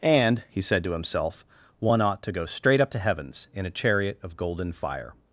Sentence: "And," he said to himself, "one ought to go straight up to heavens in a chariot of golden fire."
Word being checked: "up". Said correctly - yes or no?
yes